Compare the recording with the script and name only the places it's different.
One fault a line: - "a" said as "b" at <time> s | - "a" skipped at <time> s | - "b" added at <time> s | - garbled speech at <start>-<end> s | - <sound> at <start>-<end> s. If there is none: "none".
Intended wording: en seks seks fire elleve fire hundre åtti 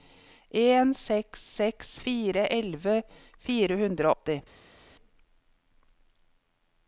none